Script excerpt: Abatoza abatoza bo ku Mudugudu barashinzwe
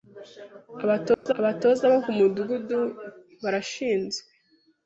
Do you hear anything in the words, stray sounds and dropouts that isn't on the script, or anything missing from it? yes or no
yes